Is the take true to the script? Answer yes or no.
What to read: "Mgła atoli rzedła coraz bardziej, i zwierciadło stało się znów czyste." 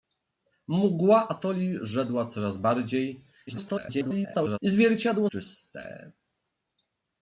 no